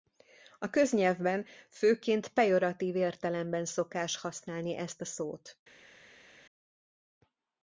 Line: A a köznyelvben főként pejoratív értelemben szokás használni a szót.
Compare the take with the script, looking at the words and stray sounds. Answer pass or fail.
fail